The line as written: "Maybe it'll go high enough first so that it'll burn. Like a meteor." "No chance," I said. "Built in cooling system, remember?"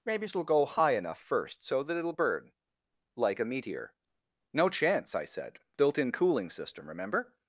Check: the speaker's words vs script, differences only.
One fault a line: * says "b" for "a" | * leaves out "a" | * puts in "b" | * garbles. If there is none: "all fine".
all fine